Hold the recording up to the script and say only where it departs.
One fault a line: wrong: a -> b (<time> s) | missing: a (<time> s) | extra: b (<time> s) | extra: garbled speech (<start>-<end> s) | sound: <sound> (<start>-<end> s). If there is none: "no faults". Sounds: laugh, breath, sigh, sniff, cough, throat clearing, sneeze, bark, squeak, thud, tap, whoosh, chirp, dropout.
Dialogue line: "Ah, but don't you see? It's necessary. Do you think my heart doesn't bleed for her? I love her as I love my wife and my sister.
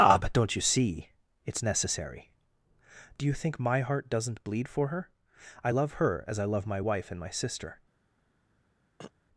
sound: throat clearing (9.0-9.1 s)